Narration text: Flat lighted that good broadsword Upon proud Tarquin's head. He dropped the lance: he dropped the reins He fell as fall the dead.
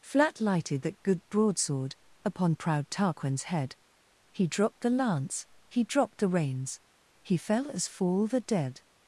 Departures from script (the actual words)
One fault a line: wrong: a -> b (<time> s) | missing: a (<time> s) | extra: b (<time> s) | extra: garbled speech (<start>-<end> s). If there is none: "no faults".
no faults